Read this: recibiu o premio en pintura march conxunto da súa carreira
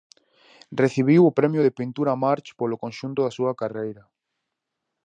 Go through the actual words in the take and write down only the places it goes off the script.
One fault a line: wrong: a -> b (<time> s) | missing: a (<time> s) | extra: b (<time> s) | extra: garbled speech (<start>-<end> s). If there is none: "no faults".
wrong: en -> de (1.6 s)
extra: polo (2.6 s)